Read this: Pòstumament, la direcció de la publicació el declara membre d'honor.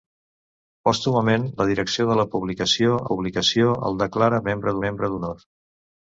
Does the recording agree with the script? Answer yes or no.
no